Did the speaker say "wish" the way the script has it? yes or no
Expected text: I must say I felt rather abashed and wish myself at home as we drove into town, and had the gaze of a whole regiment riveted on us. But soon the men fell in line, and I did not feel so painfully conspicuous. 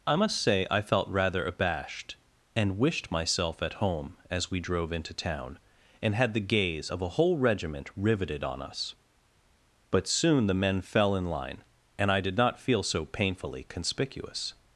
no